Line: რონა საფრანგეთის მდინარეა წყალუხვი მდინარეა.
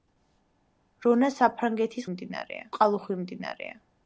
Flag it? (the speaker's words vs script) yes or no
no